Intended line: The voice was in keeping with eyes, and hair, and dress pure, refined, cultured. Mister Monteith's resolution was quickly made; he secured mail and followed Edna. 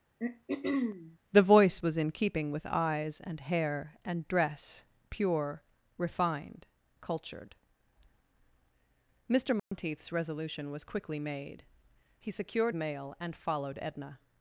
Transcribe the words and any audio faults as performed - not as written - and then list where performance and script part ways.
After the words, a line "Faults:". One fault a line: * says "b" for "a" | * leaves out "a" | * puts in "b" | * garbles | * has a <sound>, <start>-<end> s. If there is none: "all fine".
The voice was in keeping with eyes, and hair, and dress pure, refined, cultured. Mister Monteith's resolution was quickly made; he secured mail and followed Edna.
Faults:
* has a throat clearing, 0.2-1.2 s
* has a dropout, 9.6-9.7 s